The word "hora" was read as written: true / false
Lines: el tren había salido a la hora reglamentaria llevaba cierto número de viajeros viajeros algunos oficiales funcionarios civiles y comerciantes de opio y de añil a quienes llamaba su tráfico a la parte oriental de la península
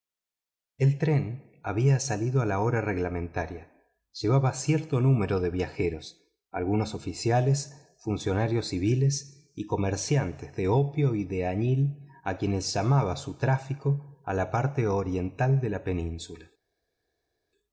true